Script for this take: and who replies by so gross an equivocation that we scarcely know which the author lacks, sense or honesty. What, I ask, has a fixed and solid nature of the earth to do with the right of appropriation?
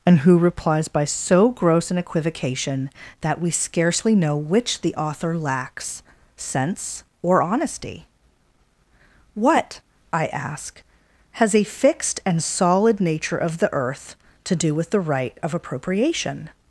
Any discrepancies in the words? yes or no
no